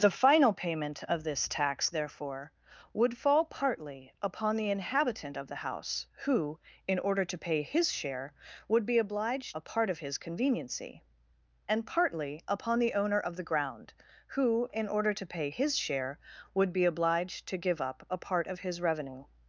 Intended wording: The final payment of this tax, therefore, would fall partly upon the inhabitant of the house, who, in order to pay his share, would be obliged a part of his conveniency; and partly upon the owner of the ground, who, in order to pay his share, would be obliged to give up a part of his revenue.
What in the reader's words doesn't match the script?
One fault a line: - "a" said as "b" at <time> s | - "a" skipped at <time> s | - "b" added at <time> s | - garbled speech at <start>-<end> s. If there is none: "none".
none